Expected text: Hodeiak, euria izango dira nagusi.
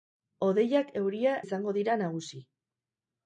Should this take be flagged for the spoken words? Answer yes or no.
no